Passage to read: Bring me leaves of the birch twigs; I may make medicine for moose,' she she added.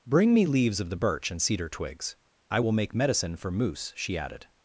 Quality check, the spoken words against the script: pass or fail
fail